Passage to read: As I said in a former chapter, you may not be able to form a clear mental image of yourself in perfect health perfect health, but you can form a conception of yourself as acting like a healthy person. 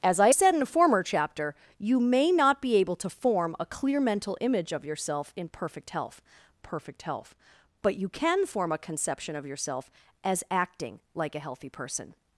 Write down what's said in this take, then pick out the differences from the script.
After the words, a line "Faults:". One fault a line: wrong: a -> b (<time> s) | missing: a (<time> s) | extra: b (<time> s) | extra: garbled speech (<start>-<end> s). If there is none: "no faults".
As I said in a former chapter, you may not be able to form a clear mental image of yourself in perfect health perfect health, but you can form a conception of yourself as acting like a healthy person.
Faults:
no faults